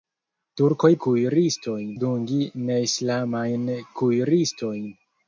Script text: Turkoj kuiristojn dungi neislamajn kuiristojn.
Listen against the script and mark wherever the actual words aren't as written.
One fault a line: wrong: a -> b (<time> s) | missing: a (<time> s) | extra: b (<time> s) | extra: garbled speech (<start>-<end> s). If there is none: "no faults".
no faults